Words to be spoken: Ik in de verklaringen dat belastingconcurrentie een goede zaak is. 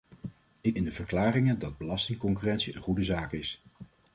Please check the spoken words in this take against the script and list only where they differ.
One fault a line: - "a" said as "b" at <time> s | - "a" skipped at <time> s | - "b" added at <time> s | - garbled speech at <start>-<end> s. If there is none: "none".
none